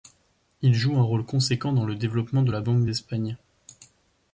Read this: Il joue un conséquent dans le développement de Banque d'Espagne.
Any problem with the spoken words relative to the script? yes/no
yes